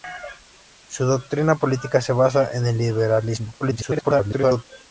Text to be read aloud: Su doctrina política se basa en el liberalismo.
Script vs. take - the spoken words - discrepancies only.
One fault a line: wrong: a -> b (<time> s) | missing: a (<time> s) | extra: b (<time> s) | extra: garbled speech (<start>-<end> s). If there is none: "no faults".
extra: garbled speech (3.6-4.6 s)